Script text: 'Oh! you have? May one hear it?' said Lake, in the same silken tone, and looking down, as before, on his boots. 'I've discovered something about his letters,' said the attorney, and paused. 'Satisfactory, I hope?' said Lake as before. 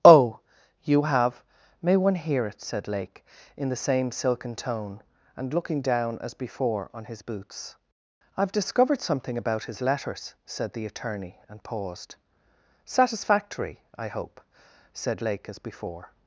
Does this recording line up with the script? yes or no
yes